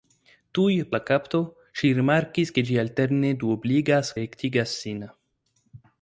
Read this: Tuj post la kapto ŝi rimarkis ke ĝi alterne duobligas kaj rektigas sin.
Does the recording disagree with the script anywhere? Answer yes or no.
yes